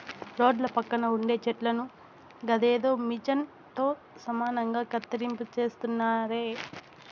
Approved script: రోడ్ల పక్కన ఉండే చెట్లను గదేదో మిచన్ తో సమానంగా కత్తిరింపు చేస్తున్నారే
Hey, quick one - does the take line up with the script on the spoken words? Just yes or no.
yes